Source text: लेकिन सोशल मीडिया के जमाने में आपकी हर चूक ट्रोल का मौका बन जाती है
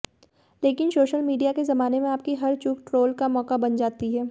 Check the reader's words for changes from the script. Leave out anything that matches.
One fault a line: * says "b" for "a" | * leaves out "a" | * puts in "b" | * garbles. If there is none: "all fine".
all fine